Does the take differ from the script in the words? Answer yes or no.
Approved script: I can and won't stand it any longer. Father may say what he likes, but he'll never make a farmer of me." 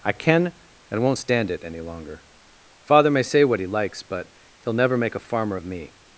no